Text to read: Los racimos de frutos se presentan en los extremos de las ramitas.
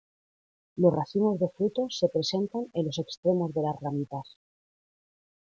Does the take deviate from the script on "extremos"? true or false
false